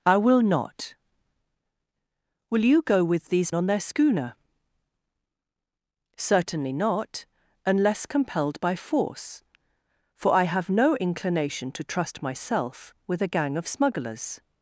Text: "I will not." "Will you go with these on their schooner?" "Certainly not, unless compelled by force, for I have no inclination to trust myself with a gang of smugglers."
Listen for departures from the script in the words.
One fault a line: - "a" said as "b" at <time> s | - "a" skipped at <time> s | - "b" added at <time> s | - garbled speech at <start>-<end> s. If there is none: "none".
none